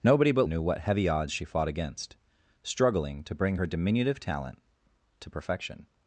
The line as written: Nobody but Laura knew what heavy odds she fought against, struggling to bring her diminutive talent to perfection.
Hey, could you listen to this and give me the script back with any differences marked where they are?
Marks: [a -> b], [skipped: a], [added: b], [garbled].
Nobody but [skipped: Laura] knew what heavy odds she fought against, struggling to bring her diminutive talent to perfection.